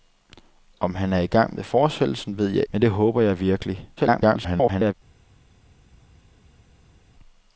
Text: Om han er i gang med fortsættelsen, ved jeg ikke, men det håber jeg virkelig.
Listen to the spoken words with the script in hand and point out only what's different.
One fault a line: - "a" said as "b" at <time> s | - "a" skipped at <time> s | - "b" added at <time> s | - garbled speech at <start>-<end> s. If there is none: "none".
- "ikke" skipped at 2.6 s
- garbled speech at 4.0-4.9 s